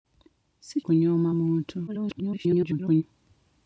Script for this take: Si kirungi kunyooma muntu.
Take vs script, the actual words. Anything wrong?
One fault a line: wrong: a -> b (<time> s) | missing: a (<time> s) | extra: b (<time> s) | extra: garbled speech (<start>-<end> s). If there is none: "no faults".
missing: kirungi (0.8 s)
extra: garbled speech (1.9-3.0 s)